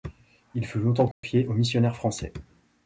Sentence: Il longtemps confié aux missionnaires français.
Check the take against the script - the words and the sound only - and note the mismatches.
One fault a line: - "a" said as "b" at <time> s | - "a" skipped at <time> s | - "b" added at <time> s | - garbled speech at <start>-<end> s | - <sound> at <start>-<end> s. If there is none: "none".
- "fut" added at 0.7 s
- dropout at 1.1-1.2 s